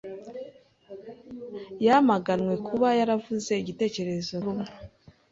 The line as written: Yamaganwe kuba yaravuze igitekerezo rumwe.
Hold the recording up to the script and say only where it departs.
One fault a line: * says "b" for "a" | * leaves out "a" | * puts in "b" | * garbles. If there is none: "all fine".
all fine